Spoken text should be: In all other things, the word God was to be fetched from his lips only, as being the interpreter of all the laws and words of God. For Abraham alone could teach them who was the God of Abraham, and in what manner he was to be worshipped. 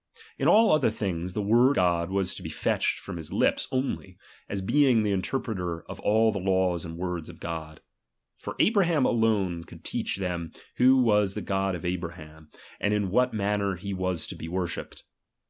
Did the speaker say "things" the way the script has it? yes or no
yes